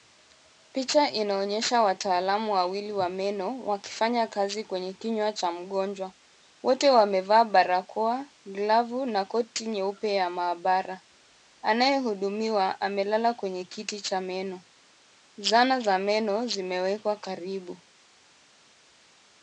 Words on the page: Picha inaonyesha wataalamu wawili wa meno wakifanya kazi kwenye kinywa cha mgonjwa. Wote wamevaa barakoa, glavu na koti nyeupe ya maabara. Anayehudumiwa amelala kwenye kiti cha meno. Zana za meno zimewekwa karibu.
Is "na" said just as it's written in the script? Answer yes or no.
yes